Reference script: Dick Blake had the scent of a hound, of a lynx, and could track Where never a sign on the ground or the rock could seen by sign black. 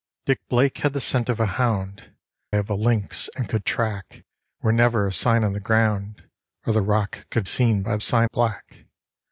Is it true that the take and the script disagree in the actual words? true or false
false